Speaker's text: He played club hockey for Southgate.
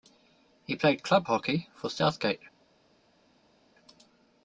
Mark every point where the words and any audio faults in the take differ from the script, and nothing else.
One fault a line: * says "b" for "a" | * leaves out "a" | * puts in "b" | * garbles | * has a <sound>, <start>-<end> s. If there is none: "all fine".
all fine